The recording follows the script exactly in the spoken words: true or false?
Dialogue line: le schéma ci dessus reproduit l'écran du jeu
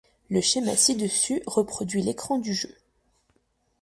true